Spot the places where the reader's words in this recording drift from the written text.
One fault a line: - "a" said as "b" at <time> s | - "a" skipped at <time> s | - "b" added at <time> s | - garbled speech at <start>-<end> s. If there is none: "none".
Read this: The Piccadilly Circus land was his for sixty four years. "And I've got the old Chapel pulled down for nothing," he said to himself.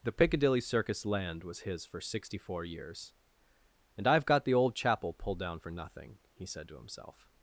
none